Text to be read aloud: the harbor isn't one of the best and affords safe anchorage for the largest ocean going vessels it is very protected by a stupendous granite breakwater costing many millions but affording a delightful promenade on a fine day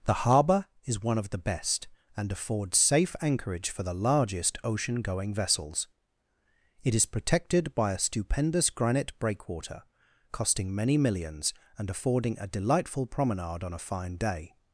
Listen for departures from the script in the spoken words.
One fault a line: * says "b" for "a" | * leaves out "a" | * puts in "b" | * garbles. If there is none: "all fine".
* says "is" for "isn't"
* leaves out "very"
* says "and" for "but"